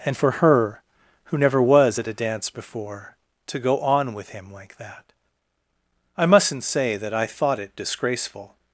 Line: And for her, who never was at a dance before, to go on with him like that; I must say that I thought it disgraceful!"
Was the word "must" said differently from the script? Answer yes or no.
yes